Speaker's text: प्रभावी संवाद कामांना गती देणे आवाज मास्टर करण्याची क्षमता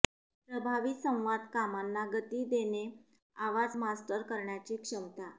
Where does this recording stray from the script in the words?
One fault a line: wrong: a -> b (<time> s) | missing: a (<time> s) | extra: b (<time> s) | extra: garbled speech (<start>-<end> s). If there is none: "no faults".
no faults